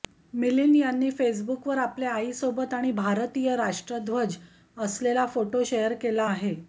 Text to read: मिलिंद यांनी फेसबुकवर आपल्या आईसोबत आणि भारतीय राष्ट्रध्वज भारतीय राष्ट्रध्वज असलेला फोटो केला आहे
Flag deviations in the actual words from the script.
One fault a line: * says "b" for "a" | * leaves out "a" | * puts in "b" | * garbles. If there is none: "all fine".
* leaves out "भारतीय राष्ट्रध्वज"
* puts in "शेअर"